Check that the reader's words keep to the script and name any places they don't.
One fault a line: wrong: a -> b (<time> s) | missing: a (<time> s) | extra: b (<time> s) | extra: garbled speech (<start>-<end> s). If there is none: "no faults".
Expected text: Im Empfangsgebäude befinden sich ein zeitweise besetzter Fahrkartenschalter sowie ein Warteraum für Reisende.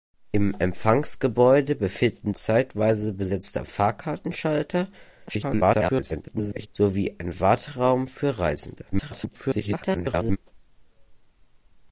missing: sich ein (2.3 s)
extra: garbled speech (5.3-6.7 s)
extra: garbled speech (8.9-10.4 s)